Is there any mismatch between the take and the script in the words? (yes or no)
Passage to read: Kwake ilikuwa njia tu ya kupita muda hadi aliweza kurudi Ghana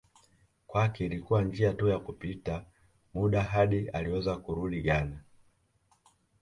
no